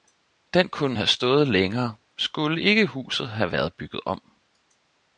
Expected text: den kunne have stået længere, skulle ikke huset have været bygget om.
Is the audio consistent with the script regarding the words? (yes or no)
yes